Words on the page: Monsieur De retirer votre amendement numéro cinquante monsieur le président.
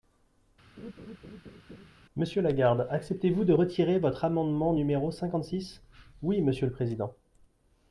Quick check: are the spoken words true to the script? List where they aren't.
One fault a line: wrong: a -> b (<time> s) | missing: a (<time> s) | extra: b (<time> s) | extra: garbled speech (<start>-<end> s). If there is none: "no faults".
extra: Lagarde acceptez vous (2.4 s)
extra: six Oui (5.4 s)